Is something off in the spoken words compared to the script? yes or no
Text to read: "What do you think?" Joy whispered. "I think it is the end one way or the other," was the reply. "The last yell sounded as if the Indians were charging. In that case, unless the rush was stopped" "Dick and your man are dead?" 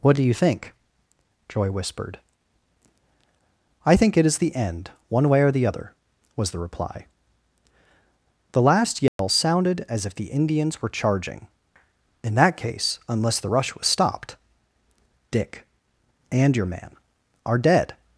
no